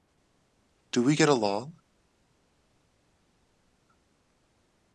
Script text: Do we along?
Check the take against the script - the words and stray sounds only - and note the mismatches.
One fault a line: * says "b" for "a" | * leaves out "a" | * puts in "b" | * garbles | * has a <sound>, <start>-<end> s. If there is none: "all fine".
* puts in "get"